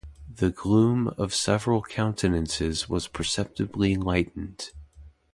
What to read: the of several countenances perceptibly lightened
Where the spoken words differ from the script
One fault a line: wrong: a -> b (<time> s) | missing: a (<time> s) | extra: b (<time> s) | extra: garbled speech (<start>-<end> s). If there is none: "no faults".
extra: gloom (0.5 s)
extra: was (2.9 s)